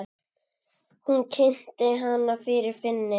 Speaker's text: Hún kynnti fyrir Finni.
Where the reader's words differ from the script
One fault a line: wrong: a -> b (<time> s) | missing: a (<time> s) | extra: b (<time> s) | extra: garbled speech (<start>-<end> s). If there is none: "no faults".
extra: hana (2.0 s)